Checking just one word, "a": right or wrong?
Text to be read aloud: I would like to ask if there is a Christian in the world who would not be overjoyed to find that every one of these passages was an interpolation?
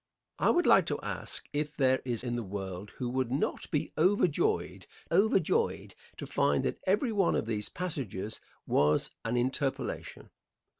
wrong